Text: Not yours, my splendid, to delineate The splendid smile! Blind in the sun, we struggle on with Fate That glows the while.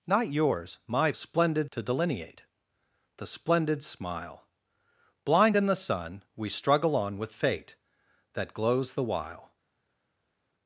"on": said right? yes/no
yes